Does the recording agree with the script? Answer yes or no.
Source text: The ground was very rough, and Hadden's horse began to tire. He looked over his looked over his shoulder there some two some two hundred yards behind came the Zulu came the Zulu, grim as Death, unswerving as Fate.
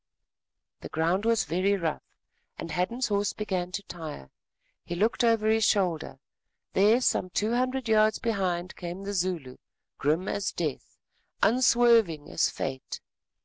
no